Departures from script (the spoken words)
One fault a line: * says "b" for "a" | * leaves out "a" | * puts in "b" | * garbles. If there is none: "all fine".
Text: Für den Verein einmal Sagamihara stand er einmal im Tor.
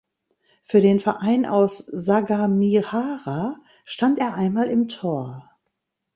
* says "aus" for "einmal"